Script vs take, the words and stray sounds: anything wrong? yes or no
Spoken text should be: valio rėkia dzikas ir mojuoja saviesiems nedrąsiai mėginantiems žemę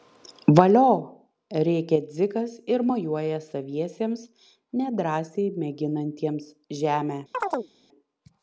yes